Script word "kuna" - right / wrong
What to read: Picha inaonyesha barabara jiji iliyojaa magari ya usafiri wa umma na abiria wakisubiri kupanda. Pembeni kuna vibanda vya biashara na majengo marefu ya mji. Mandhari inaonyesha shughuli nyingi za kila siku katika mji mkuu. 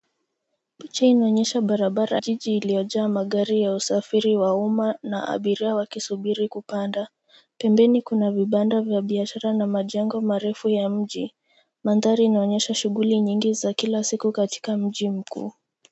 right